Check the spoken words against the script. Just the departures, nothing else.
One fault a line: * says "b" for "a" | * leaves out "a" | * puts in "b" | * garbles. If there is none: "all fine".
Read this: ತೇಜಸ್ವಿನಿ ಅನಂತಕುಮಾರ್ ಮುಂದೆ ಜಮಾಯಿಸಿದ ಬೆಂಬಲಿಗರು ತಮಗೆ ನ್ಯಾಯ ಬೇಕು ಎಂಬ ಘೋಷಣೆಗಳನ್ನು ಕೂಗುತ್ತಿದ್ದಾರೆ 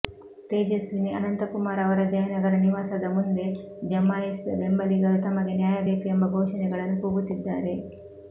* puts in "ಅವರ ಜಯನಗರ ನಿವಾಸದ"